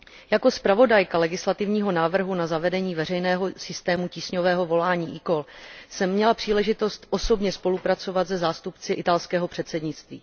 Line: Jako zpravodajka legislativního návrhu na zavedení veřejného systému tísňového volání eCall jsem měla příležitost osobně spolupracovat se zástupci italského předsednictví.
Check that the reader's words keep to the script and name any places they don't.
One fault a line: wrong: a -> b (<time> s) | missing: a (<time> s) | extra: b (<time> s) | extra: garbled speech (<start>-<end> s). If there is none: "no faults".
no faults